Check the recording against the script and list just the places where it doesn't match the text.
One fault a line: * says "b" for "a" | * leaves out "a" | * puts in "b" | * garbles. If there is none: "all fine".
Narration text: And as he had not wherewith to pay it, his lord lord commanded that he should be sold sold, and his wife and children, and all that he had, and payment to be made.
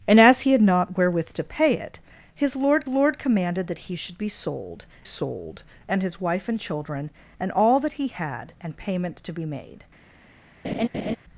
all fine